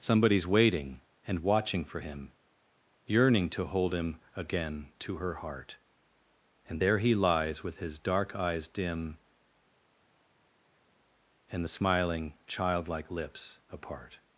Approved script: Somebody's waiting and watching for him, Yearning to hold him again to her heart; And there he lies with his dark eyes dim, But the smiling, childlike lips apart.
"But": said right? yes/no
no